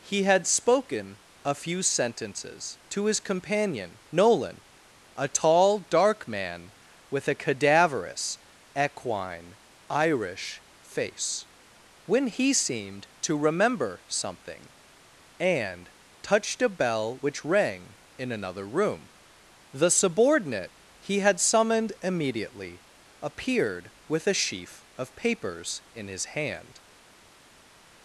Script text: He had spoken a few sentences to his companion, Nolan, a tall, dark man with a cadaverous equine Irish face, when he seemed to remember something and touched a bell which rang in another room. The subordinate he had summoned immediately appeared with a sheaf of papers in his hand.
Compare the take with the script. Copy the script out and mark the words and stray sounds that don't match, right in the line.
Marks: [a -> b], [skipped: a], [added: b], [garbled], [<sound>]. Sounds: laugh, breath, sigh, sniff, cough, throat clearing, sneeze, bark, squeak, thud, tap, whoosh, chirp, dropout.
He had spoken a few sentences to his companion, Nolan, a tall, dark man with a cadaverous equine Irish face, when he seemed to remember something and touched a bell which rang in another room. The subordinate he had summoned immediately appeared with a sheaf of papers in his hand.